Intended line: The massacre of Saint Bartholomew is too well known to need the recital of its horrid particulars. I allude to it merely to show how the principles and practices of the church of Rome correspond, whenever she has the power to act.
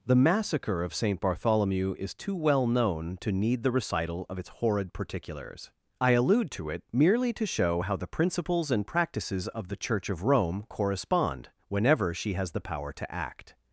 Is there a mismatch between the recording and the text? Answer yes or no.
no